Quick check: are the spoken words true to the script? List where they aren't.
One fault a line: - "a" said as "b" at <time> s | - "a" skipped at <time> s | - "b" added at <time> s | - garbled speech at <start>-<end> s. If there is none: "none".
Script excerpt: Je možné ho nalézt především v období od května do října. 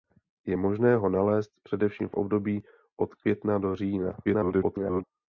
- garbled speech at 4.2-5.0 s